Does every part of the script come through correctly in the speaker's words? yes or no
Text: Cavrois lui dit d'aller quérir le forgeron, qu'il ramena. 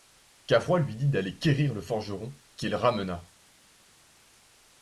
yes